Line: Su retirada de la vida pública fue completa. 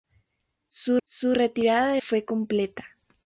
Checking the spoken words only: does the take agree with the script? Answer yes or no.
no